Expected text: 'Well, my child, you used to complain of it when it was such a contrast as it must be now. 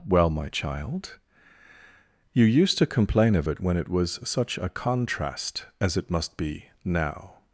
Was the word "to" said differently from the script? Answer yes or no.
no